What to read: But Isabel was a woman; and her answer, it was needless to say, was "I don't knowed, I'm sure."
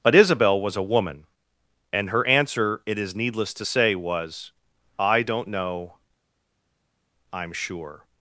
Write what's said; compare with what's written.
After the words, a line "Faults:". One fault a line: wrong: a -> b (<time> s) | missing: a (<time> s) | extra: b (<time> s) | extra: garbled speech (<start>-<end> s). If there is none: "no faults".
But Isabel was a woman; and her answer, it is needless to say, was "I don't know, I'm sure."
Faults:
wrong: was -> is (3.0 s)
wrong: knowed -> know (5.5 s)